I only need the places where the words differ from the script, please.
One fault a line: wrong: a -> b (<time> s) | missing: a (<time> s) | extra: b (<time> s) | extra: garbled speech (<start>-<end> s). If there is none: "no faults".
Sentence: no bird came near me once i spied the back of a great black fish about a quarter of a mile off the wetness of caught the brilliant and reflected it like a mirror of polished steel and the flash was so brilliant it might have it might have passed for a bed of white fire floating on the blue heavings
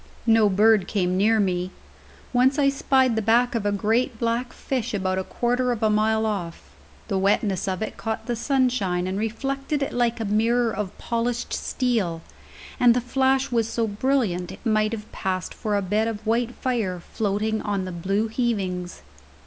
extra: it (7.8 s)
wrong: brilliant -> sunshine (8.3 s)
missing: it might have (15.1 s)